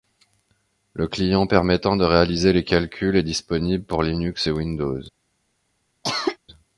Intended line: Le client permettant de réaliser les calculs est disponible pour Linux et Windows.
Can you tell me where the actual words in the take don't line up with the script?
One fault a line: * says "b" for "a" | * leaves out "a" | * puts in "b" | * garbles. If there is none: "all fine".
all fine